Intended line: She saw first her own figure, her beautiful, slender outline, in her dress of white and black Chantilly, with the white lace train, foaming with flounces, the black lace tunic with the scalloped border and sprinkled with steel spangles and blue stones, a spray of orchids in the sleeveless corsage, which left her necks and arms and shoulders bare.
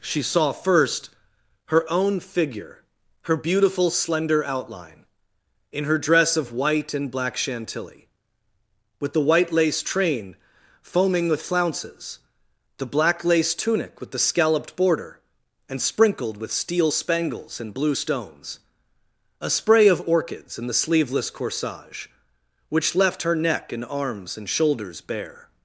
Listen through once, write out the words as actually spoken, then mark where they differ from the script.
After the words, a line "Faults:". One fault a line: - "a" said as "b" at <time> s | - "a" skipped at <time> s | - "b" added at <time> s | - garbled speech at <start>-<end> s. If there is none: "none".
She saw first her own figure, her beautiful, slender outline, in her dress of white and black Chantilly, with the white lace train, foaming with flounces, the black lace tunic with the scalloped border and sprinkled with steel spangles and blue stones, a spray of orchids in the sleeveless corsage, which left her neck and arms and shoulders bare.
Faults:
- "necks" said as "neck" at 23.3 s